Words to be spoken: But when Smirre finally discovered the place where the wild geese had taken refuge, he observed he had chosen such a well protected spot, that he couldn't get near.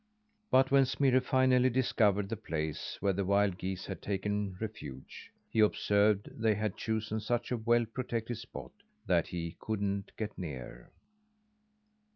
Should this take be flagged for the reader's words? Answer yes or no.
yes